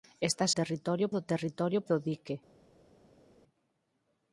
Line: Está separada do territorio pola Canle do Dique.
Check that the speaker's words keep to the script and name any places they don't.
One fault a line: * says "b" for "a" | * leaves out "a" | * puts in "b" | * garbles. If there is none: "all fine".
* says "territorio" for "separada"
* leaves out "pola Canle"